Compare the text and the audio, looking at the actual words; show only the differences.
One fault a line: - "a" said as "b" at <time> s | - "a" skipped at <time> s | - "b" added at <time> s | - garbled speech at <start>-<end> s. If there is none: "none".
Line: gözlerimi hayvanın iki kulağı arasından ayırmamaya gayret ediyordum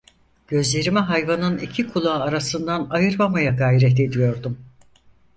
none